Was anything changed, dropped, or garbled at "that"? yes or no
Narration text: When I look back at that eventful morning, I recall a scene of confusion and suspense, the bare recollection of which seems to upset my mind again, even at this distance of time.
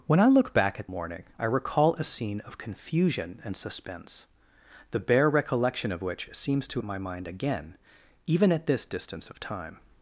yes